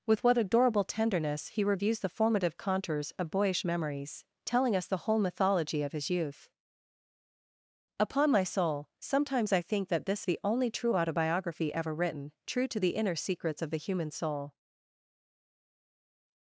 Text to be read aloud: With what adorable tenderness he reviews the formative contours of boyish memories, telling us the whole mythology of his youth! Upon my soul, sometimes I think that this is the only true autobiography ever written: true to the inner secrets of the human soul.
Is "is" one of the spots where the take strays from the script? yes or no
yes